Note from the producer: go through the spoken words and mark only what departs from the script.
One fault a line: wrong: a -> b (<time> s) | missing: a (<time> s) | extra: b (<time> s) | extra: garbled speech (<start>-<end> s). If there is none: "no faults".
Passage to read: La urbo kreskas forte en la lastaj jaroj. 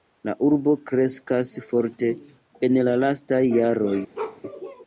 no faults